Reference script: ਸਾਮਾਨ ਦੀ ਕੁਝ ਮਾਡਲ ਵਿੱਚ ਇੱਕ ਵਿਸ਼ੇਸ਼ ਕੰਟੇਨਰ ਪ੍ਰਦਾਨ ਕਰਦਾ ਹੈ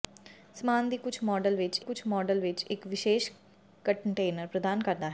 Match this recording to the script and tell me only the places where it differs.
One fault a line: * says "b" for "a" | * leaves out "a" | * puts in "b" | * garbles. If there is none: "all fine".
* puts in "ਕੁਝ ਮਾਡਲ ਵਿੱਚ"